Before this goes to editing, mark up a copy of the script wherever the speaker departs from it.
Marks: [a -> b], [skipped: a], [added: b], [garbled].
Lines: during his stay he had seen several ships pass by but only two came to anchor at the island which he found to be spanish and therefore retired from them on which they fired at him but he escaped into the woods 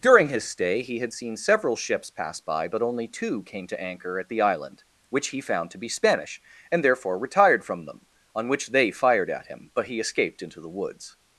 during his stay he had seen several ships pass by but only two came to anchor at the island which he found to be spanish and therefore retired from them on which they fired at him but he escaped into the woods